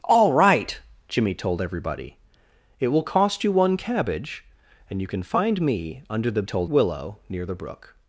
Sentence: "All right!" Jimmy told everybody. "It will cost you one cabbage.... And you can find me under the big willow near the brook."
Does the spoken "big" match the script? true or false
false